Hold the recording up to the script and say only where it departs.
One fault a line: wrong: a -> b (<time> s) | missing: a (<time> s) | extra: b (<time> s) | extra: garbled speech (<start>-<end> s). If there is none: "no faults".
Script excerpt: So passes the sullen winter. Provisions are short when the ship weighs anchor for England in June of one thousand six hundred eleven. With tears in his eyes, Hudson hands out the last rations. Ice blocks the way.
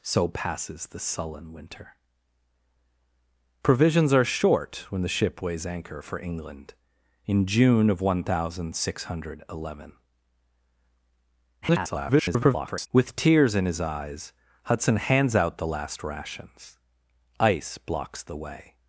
extra: garbled speech (11.6-12.9 s)